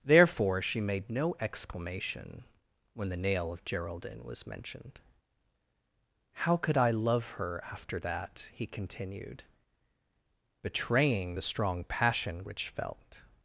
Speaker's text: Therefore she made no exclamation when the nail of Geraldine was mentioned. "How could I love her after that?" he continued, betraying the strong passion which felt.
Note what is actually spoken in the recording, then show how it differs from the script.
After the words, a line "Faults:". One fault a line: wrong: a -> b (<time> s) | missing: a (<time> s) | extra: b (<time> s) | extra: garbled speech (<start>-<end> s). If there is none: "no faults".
Therefore she made no exclamation when the nail of Geraldine was mentioned. "How could I love her after that?" he continued, betraying the strong passion which felt.
Faults:
no faults